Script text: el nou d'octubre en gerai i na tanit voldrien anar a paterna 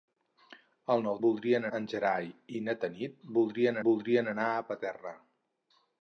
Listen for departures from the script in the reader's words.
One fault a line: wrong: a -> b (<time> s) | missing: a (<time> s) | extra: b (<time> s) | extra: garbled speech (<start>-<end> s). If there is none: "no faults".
wrong: d'octubre -> voldrien (1.3 s)
extra: voldrien (3.9 s)